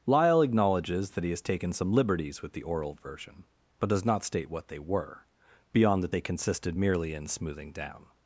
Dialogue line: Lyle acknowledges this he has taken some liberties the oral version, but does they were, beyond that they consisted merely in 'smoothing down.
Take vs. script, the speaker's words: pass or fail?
fail